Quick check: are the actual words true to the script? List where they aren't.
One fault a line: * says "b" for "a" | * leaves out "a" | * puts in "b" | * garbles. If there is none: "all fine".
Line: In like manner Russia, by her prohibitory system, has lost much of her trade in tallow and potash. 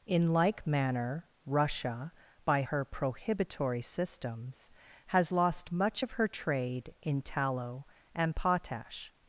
* says "systems" for "system"